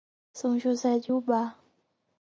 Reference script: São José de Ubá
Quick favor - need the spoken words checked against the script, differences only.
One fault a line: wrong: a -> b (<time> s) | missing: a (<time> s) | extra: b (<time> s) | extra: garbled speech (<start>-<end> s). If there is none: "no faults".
no faults